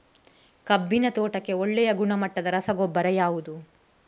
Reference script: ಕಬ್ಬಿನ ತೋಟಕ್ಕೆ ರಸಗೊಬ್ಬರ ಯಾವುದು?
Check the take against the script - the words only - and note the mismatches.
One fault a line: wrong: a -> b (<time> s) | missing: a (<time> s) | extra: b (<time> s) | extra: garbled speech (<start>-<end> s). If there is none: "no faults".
extra: ಒಳ್ಳೆಯ ಗುಣಮಟ್ಟದ (1.5 s)